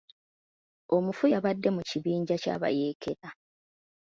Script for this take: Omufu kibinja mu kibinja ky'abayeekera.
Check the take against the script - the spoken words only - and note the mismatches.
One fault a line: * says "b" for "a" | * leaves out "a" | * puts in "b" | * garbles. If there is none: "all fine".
* says "yabadde" for "kibinja"